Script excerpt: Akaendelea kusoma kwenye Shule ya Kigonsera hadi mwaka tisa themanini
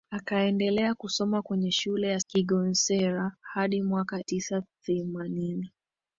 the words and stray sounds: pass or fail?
pass